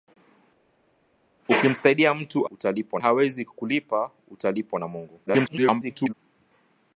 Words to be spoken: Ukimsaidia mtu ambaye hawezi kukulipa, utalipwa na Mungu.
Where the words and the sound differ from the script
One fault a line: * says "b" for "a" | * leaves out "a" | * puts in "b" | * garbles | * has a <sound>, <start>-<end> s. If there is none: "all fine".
* says "utalipwa" for "ambaye"
* garbles